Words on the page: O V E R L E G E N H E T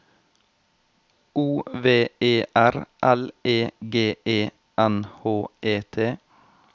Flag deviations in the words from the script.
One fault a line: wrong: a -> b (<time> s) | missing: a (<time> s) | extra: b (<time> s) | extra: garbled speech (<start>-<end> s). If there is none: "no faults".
no faults